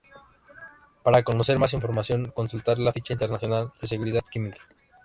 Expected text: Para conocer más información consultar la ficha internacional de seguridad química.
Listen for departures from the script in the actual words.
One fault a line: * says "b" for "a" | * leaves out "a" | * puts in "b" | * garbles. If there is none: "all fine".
all fine